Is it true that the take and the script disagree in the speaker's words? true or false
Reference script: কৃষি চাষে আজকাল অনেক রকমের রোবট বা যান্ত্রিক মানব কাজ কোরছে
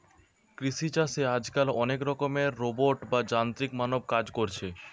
false